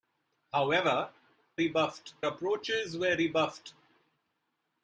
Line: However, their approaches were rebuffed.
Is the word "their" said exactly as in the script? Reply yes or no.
no